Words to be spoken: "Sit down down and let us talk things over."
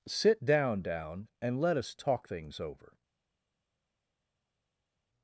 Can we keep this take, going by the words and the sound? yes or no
yes